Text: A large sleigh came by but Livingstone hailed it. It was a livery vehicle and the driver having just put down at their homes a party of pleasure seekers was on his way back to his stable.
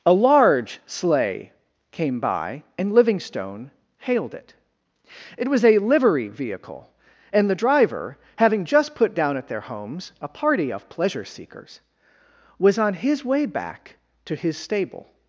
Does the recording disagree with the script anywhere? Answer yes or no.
yes